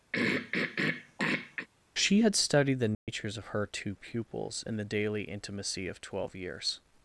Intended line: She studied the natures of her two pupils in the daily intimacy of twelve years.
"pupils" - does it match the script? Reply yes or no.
yes